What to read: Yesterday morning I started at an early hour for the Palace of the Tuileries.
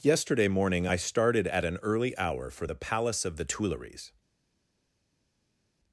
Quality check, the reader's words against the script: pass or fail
pass